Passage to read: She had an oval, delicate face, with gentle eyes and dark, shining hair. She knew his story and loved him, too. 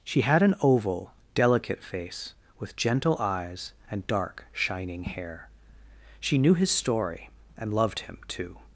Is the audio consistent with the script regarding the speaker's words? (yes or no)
yes